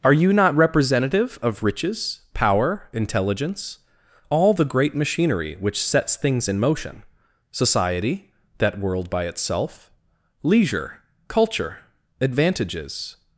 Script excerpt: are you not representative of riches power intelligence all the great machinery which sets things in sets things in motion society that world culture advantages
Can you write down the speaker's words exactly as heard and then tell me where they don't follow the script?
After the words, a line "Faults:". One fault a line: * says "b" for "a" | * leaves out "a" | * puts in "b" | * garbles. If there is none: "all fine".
are you not representative of riches power intelligence all the great machinery which sets things in motion society that world by itself leisure culture advantages
Faults:
* leaves out "sets things in"
* puts in "by itself leisure"